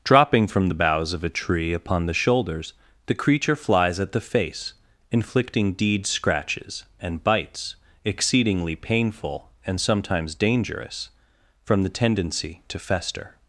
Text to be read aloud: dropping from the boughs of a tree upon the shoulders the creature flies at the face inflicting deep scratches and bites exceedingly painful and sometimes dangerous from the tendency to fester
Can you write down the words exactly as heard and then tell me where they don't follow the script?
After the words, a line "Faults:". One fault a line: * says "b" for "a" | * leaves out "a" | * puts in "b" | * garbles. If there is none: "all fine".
dropping from the boughs of a tree upon the shoulders the creature flies at the face inflicting deed scratches and bites exceedingly painful and sometimes dangerous from the tendency to fester
Faults:
* says "deed" for "deep"